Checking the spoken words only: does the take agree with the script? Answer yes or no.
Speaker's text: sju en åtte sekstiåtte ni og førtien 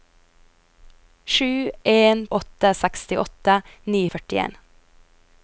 yes